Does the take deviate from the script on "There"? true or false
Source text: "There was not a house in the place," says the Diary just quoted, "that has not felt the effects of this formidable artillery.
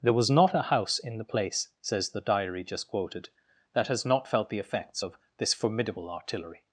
false